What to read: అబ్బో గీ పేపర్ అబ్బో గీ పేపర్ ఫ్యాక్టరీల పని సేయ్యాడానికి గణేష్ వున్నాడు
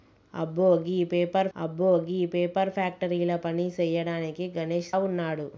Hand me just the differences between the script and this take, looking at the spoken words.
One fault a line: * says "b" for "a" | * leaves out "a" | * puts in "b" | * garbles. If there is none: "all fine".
all fine